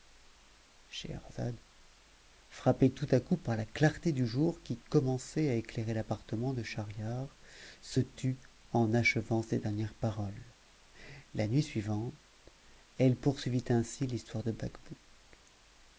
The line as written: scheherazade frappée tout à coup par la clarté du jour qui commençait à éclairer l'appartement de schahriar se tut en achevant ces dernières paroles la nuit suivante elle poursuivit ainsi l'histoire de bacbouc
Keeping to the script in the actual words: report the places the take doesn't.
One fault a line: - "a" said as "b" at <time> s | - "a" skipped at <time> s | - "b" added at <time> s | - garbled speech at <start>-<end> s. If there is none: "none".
none